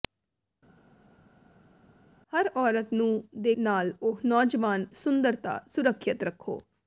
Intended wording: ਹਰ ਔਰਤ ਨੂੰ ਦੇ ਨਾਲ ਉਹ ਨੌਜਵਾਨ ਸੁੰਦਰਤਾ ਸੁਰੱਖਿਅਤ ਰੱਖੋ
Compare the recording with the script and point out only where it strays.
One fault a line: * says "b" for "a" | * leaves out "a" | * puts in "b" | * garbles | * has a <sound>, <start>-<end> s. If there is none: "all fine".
all fine